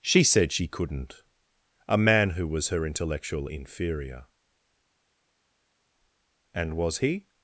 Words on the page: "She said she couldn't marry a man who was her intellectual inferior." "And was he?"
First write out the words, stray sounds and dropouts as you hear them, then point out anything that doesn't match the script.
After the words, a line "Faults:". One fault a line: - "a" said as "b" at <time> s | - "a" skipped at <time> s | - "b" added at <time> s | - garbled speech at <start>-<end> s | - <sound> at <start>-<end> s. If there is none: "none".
"She said she couldn't a man who was her intellectual inferior." "And was he?"
Faults:
- "marry" skipped at 1.2 s